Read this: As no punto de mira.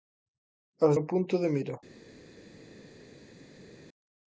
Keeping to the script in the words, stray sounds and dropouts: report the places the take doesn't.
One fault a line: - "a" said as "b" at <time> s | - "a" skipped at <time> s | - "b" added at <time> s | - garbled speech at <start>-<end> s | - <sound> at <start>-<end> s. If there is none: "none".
none